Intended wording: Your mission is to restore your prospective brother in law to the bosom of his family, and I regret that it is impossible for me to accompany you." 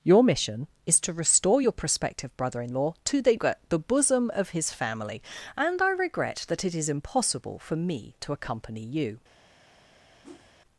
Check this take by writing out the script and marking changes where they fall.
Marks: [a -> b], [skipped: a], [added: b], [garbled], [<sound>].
Your mission is to restore your prospective brother in law to the [added: the] bosom of his family, and I regret that it is impossible for me to accompany you." [whoosh]